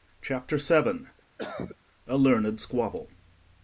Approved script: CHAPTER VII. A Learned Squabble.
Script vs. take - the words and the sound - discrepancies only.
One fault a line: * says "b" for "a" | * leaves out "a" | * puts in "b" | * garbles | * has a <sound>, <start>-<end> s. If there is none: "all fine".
* has a cough, 1.4-1.8 s